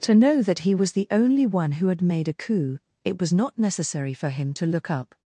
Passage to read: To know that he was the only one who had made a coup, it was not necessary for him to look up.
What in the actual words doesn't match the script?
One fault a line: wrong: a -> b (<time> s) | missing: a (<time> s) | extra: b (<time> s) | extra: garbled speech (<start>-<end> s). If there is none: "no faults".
no faults